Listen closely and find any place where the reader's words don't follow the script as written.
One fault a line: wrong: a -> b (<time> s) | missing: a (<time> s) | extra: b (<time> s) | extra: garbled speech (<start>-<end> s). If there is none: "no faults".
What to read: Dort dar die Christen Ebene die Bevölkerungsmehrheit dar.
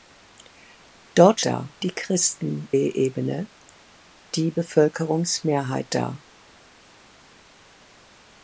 no faults